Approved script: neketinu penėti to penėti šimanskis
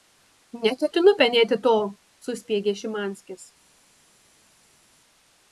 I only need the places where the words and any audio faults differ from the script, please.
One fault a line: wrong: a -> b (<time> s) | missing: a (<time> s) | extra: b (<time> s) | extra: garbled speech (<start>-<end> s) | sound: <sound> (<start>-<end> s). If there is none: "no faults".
wrong: penėti -> suspiegė (2.3 s)